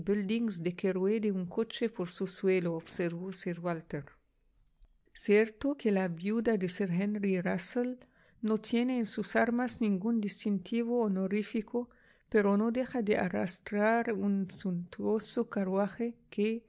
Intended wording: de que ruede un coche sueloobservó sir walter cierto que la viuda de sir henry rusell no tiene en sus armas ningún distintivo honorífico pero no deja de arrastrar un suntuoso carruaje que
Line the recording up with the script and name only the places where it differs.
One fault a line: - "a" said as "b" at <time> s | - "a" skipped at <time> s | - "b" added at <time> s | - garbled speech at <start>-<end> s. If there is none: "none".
- "por su" added at 1.9 s